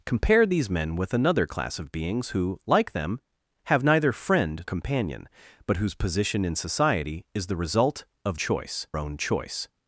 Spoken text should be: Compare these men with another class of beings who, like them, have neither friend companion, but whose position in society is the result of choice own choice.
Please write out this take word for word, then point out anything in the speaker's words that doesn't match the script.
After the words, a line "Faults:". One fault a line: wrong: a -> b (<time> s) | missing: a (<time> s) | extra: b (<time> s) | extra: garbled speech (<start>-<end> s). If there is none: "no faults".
Compare these men with another class of beings who, like them, have neither friend companion, but whose position in society is the result of choice own choice.
Faults:
no faults